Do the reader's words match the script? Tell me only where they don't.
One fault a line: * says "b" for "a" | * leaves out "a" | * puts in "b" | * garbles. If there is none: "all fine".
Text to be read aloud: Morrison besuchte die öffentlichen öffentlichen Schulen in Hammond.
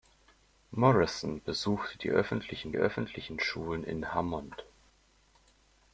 all fine